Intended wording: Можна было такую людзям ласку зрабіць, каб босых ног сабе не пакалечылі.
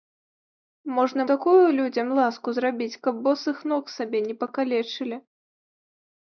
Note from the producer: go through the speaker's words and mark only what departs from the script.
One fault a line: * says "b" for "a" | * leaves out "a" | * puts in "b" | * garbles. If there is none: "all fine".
* leaves out "было"